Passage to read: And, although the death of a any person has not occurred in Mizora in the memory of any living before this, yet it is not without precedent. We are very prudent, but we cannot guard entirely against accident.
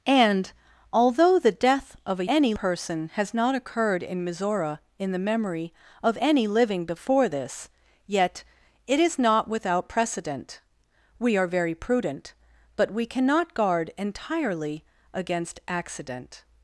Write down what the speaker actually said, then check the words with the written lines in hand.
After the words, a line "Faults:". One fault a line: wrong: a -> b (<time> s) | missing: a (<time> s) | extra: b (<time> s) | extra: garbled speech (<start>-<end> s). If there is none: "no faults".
And, although the death of a any person has not occurred in Mizora in the memory of any living before this, yet it is not without precedent. We are very prudent, but we cannot guard entirely against accident.
Faults:
no faults